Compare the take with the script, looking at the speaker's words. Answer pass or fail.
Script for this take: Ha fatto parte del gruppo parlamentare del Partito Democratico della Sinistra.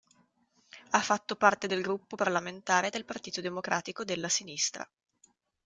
pass